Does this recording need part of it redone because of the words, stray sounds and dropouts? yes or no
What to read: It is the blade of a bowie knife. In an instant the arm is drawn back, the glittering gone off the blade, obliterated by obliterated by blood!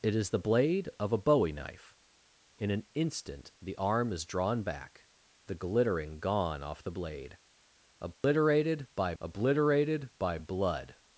yes